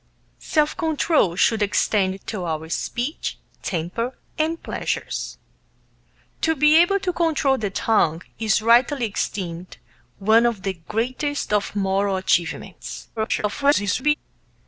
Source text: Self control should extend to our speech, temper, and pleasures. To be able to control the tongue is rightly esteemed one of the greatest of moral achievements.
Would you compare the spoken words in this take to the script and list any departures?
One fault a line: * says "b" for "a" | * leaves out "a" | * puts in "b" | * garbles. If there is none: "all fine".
* garbles